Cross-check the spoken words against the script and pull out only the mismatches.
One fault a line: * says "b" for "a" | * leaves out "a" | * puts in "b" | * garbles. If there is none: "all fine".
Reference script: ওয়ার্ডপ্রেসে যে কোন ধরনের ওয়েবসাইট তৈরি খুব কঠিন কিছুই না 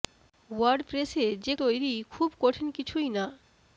* leaves out "কোন ধরনের ওয়েবসাইট"